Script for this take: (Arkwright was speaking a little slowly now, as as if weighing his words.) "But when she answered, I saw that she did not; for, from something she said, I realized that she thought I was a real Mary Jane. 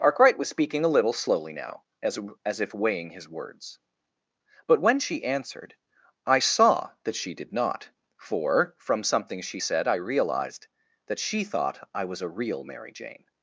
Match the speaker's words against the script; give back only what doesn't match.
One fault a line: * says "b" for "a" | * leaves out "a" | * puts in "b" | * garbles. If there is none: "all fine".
all fine